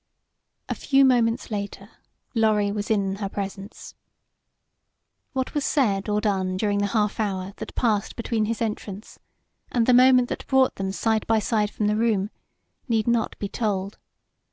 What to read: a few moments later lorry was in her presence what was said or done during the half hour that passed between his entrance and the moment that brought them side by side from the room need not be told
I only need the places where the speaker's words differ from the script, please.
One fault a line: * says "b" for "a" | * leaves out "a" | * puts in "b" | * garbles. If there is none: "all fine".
all fine